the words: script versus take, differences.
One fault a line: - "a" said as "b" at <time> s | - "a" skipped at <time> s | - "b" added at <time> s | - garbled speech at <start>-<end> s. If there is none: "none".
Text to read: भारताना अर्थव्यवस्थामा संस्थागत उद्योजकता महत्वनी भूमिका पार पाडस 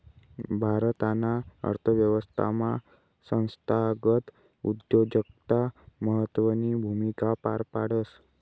none